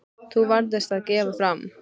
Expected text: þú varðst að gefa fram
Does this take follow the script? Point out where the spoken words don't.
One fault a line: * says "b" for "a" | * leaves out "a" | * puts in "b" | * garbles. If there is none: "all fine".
all fine